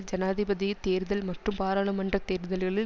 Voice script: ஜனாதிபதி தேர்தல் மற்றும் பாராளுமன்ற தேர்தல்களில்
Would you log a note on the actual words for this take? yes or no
no